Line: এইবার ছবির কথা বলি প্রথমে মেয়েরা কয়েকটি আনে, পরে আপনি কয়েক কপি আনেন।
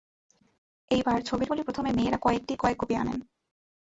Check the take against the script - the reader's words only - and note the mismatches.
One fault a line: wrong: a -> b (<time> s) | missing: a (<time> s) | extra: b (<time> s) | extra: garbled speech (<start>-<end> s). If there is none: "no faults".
missing: কথা (1.5 s)
missing: আনে পরে আপনি (2.5 s)